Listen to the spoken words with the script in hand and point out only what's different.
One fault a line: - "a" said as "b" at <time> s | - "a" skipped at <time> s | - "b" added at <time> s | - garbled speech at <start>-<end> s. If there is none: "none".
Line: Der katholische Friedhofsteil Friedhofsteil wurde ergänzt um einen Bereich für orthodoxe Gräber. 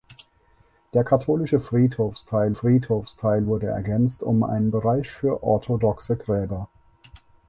none